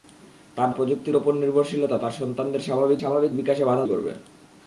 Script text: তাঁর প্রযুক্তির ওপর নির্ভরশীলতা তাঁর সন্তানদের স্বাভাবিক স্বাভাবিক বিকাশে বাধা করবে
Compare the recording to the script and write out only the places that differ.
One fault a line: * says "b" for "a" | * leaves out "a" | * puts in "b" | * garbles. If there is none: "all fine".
all fine